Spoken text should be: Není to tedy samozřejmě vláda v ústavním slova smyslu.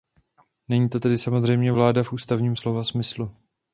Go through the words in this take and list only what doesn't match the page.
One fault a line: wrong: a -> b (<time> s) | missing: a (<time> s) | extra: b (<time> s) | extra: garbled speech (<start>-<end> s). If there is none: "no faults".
no faults